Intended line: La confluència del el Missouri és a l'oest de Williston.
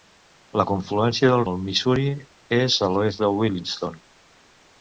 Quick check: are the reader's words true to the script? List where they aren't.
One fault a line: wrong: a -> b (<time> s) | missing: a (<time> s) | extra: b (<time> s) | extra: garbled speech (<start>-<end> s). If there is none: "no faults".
no faults